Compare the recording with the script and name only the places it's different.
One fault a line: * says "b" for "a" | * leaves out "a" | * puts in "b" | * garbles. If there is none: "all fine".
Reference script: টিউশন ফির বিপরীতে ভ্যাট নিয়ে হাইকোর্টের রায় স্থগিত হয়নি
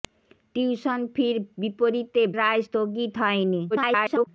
* leaves out "ভ্যাট নিয়ে হাইকোর্টের"
* garbles